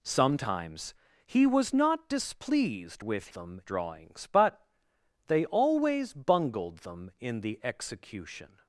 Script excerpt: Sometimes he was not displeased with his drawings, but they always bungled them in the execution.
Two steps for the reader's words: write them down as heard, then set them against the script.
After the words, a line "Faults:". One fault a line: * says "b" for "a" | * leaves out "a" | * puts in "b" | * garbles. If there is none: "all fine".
Sometimes he was not displeased with them drawings, but they always bungled them in the execution.
Faults:
* says "them" for "his"